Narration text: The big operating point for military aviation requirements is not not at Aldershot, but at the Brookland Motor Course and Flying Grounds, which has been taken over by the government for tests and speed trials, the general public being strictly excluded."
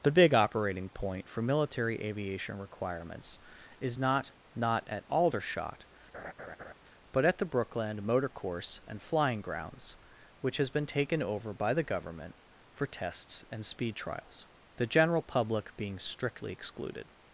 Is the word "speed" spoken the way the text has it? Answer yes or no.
yes